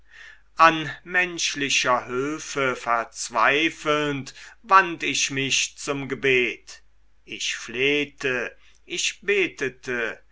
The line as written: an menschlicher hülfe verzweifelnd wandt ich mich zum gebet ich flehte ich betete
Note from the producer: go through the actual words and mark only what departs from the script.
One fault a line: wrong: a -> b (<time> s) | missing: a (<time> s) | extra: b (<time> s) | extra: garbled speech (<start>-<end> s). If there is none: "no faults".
no faults